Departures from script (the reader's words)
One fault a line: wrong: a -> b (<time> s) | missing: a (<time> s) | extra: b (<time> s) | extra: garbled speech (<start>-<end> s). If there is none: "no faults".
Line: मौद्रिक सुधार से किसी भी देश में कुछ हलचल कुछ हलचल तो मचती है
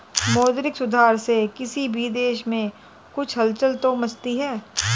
missing: कुछ हलचल (3.8 s)